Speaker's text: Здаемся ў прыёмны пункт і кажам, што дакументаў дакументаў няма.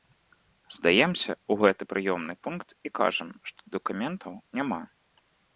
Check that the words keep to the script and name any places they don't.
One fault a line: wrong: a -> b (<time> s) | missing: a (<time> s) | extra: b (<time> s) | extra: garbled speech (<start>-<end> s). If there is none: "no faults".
extra: гэты (1.7 s)
missing: дакументаў (4.3 s)